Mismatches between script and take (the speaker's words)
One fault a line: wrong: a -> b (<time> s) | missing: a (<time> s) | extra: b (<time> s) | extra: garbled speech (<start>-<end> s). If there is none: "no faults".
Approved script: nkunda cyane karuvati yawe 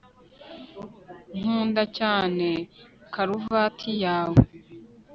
no faults